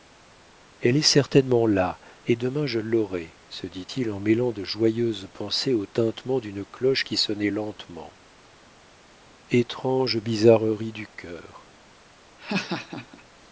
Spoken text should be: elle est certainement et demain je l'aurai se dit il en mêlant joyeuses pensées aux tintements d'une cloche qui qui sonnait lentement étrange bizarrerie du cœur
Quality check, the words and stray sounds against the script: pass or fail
fail